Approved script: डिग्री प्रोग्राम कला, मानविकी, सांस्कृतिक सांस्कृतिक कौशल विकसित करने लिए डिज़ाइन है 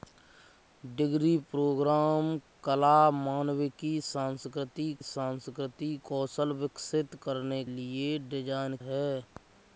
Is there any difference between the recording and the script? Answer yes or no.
no